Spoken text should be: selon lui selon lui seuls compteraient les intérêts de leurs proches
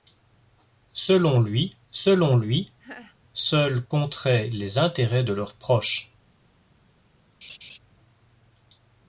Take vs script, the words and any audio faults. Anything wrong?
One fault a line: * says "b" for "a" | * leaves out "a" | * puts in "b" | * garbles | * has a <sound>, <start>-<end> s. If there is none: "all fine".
* has a laugh, 2.8-3.2 s
* has a laugh, 7.4-7.8 s